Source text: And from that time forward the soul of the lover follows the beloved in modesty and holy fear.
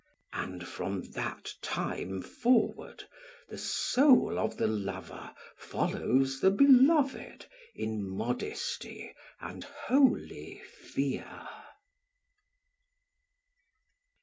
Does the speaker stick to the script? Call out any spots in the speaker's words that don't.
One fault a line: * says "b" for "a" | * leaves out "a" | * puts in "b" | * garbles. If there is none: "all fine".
all fine